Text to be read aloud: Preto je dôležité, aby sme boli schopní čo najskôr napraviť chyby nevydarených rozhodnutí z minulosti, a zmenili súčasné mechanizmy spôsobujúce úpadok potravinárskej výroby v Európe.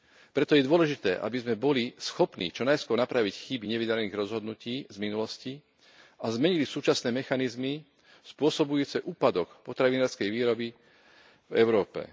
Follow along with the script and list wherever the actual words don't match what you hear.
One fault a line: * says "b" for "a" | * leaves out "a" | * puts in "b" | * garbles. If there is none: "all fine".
all fine